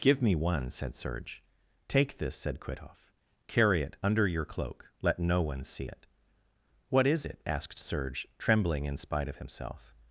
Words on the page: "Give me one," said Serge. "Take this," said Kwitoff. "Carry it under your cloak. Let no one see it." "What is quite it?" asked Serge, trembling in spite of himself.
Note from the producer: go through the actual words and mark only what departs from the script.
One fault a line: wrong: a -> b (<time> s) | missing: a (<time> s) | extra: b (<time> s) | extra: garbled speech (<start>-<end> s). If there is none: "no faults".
missing: quite (7.3 s)